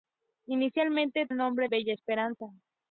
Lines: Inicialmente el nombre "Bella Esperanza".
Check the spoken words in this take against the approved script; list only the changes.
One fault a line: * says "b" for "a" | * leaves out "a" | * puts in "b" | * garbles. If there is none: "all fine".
all fine